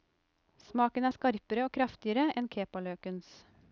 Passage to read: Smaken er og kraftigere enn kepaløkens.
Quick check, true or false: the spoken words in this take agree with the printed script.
false